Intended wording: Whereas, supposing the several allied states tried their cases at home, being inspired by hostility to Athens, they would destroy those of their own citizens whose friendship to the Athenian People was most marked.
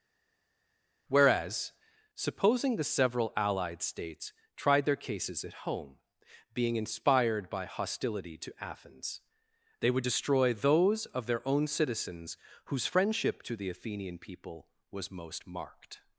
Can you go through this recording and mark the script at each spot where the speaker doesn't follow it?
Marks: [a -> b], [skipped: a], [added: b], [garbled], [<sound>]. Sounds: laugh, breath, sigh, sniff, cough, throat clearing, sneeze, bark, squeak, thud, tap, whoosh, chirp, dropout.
Whereas, supposing the several allied states tried their cases at home, being inspired by hostility to Athens, they would destroy those of their own citizens whose friendship to the Athenian People was most marked.